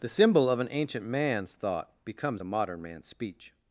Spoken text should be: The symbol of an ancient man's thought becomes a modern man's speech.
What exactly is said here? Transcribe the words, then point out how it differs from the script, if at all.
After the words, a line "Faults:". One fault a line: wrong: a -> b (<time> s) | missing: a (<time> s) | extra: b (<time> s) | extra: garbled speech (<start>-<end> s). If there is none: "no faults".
The symbol of an ancient man's thought becomes a modern man's speech.
Faults:
no faults